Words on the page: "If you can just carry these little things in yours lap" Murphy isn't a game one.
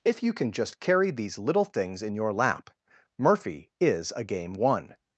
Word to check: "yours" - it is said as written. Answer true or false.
false